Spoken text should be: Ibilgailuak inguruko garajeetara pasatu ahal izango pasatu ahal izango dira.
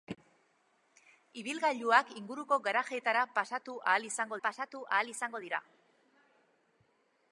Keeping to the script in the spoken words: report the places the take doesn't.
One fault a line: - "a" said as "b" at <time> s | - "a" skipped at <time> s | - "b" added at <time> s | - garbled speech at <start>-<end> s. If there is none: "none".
none